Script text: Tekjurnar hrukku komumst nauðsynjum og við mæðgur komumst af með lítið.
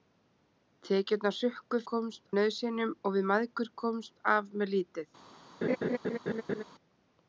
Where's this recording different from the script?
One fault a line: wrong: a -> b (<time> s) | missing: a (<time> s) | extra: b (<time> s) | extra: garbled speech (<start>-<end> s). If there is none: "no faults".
no faults